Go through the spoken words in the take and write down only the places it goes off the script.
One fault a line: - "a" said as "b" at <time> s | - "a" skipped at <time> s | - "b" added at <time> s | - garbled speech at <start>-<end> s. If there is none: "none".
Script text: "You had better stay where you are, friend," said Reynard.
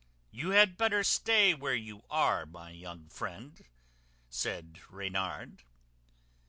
- "my young" added at 2.5 s